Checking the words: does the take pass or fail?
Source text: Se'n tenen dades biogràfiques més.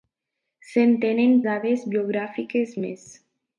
pass